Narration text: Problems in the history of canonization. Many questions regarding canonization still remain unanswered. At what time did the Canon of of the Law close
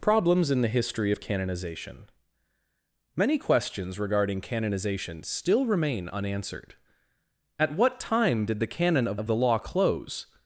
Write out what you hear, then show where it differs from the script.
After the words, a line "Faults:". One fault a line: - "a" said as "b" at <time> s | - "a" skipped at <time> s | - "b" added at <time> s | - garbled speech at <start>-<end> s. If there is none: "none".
Problems in the history of canonization. Many questions regarding canonization still remain unanswered. At what time did the Canon of of the Law close
Faults:
none